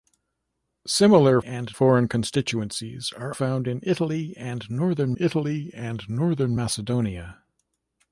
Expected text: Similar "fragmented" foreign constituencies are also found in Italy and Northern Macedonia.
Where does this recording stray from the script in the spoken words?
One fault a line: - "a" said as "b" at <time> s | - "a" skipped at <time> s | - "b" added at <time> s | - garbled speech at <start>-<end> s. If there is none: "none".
- "fragmented" said as "and" at 1.4 s
- "also" skipped at 3.3 s
- "Italy and Northern" added at 5.2 s